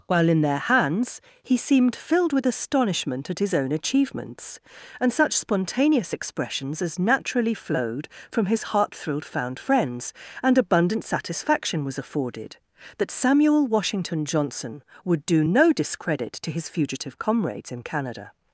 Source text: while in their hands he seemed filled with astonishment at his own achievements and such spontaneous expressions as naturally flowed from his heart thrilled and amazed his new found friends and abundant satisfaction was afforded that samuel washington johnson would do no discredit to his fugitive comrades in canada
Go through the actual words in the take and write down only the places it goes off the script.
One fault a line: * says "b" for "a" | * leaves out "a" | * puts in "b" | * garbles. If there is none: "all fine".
* leaves out "and amazed his new"